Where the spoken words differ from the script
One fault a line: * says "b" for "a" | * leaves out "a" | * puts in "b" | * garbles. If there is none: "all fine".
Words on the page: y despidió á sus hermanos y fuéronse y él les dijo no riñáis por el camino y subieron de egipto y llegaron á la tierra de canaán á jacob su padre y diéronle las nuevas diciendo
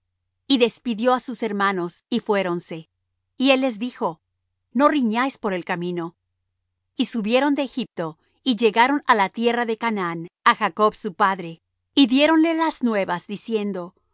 all fine